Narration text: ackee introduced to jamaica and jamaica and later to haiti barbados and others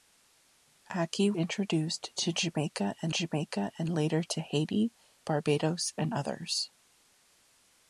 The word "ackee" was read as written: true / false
true